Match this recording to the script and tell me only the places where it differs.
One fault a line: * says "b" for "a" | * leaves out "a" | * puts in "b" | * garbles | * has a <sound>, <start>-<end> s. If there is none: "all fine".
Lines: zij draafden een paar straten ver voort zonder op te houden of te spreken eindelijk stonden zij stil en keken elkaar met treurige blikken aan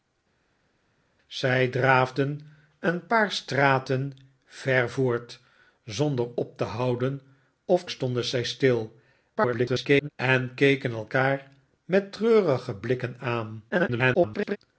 * leaves out "te spreken eindelijk"
* garbles
* garbles